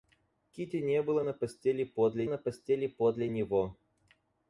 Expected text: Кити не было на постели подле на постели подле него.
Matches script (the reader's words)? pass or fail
pass